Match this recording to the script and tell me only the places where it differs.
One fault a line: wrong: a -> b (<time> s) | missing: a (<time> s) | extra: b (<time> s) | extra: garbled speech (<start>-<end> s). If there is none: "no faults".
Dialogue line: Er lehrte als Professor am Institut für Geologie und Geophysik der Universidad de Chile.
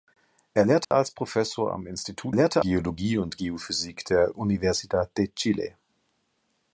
wrong: für -> lehrte (2.3 s)